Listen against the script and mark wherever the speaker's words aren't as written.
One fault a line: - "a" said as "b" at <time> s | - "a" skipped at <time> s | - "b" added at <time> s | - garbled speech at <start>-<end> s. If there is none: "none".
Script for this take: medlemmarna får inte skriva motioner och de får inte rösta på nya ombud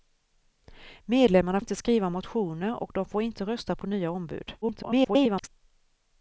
- "får" skipped at 1.6 s
- garbled speech at 4.6-5.5 s